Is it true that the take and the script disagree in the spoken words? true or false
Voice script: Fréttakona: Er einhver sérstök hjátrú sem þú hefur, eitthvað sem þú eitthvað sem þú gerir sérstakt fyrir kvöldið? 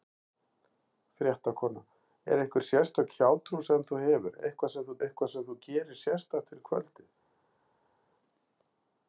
false